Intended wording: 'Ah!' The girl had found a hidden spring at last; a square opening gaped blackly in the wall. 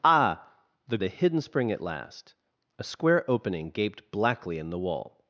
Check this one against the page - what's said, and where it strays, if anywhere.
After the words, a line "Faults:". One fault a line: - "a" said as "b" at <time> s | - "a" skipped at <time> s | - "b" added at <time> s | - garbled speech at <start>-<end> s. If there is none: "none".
'Ah!' The a hidden spring at last; a square opening gaped blackly in the wall.
Faults:
- "girl had found" skipped at 1.0 s